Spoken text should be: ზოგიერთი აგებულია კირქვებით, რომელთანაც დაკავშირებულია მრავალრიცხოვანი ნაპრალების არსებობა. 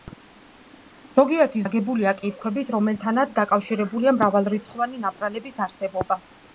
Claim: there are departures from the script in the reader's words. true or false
false